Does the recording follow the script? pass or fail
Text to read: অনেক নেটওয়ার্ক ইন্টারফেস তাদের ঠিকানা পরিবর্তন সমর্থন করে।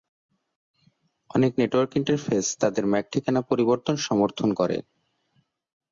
fail